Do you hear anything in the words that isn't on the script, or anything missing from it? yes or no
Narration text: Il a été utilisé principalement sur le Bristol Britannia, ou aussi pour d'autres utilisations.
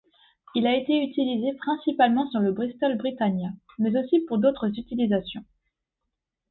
yes